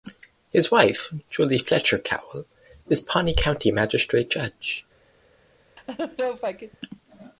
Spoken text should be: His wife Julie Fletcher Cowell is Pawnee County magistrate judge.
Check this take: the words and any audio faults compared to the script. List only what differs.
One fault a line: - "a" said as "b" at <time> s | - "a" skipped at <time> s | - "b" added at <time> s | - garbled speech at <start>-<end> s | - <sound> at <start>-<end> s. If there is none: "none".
- laugh at 5.8-6.8 s